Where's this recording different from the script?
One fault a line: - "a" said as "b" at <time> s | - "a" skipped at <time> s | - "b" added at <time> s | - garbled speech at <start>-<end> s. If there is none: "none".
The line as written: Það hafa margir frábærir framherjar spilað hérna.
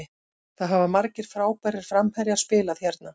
none